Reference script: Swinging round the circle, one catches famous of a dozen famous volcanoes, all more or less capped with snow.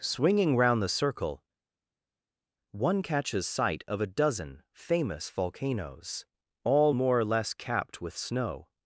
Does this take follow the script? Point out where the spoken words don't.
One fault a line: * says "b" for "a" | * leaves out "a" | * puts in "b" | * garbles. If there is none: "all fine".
* says "sight" for "famous"